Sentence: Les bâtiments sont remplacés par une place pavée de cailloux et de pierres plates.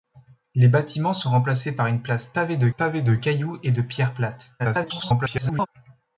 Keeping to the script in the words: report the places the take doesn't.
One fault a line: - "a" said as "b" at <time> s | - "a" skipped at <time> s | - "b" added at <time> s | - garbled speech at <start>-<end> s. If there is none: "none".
- "pavée de" added at 2.7 s
- garbled speech at 4.6-5.7 s